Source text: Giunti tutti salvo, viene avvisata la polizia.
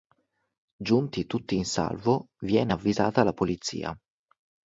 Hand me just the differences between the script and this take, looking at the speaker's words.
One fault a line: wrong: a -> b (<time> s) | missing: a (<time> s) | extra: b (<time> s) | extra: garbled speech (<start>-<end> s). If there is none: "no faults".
extra: in (1.5 s)